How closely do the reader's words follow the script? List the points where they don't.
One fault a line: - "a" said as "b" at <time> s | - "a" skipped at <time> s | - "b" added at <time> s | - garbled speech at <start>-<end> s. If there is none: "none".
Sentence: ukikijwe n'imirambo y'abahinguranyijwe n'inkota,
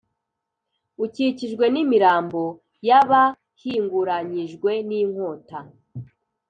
none